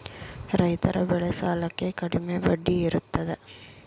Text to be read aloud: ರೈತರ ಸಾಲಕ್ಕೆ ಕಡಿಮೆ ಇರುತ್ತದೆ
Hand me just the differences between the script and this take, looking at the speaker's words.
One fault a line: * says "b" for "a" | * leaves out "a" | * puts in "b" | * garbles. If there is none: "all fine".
* puts in "ಬೆಳೆ"
* puts in "ಬಡ್ಡಿ"